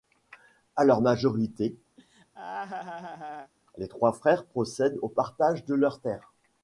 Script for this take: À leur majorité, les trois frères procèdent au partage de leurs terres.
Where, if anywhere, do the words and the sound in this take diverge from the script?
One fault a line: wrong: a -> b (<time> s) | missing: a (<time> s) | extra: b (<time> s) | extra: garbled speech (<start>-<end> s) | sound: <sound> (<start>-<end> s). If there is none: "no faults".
sound: laugh (2.0-3.5 s)